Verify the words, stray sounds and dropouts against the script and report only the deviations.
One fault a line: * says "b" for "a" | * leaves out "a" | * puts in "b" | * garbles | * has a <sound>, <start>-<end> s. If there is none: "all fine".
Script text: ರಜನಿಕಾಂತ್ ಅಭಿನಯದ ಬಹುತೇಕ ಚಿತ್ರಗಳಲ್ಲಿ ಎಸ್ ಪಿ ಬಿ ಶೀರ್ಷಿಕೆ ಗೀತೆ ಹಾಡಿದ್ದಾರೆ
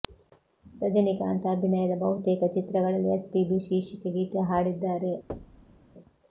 * has a thud, 5.3-5.8 s